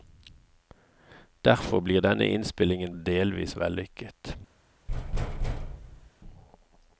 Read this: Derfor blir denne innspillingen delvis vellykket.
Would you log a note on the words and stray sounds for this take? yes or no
yes